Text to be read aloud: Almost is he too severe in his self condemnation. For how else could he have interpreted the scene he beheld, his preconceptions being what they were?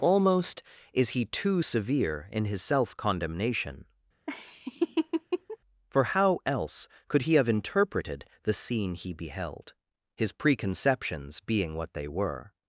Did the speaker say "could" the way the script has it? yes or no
yes